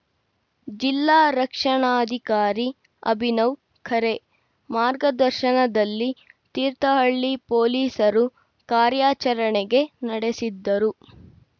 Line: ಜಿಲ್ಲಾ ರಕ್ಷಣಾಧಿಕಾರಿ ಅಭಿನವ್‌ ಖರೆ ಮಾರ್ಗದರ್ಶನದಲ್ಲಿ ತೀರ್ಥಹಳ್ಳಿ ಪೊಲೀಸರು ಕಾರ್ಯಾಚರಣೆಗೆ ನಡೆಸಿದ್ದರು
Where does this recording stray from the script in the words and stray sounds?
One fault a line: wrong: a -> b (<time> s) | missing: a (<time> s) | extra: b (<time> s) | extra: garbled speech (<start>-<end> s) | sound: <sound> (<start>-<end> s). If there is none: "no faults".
no faults